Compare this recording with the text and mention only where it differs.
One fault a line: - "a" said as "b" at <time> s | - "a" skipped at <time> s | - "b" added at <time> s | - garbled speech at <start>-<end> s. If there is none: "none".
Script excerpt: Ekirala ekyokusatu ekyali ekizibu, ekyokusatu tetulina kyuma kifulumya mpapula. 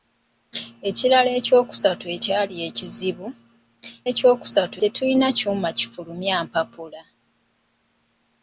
none